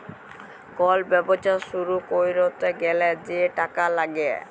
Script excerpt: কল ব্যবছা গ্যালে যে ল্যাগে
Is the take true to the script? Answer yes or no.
no